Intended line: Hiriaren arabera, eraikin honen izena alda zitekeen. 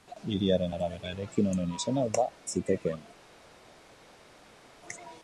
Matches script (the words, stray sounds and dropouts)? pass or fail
pass